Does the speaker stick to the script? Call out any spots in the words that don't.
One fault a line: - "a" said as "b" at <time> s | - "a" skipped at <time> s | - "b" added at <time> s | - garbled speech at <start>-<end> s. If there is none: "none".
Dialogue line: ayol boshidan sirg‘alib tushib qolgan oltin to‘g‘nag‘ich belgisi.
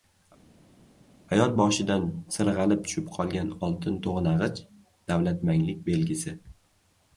- "davlatmanglik" added at 5.1 s